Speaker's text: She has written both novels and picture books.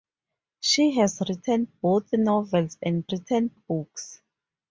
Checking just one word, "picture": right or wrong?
wrong